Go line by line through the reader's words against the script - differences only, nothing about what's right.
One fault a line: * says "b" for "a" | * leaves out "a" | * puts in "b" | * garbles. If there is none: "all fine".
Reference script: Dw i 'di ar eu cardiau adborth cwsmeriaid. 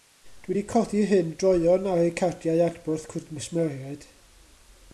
* puts in "codi hyn droeon"